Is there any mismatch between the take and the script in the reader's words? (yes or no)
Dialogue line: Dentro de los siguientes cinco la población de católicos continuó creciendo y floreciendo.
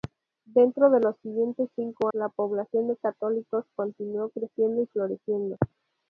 no